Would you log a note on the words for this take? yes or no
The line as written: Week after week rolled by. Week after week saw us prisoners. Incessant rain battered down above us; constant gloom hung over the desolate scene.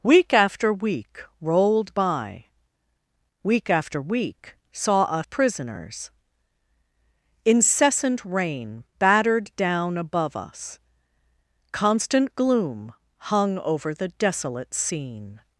no